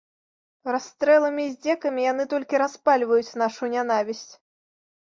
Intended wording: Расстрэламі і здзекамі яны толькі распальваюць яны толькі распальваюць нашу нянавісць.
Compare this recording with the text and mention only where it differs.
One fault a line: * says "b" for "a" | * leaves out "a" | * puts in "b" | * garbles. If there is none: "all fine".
* leaves out "яны толькі распальваюць"